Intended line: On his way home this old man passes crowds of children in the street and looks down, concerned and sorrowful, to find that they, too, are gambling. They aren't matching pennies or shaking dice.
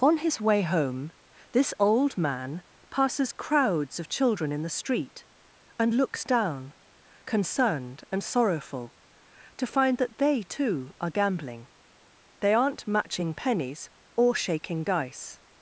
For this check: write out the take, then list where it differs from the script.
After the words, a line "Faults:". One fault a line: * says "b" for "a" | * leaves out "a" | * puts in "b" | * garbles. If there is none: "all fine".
On his way home this old man passes crowds of children in the street and looks down, concerned and sorrowful, to find that they, too, are gambling. They aren't matching pennies or shaking dice.
Faults:
all fine